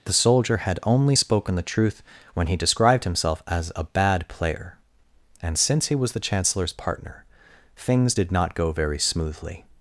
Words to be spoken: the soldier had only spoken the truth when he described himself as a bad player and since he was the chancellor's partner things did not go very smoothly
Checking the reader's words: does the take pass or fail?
pass